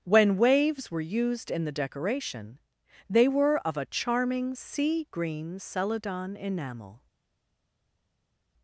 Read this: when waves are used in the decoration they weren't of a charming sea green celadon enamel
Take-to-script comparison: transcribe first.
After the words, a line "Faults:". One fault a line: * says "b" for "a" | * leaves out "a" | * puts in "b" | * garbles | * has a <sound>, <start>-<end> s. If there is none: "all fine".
when waves were used in the decoration they were of a charming sea green celadon enamel
Faults:
* says "were" for "are"
* says "were" for "weren't"